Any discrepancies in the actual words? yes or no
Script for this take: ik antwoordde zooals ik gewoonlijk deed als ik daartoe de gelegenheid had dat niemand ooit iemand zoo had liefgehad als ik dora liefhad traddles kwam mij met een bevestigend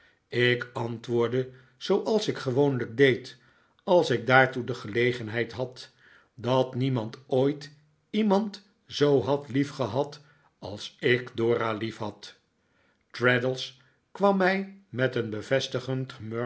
no